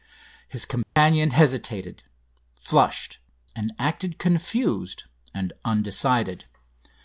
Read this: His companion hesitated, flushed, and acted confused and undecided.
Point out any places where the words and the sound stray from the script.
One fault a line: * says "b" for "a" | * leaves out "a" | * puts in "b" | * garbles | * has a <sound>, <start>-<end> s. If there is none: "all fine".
* has a dropout, 0.8-1.0 s